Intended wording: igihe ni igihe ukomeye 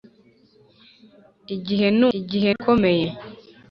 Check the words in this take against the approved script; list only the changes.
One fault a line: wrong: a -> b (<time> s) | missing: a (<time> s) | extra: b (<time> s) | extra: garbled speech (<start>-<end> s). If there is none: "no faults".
no faults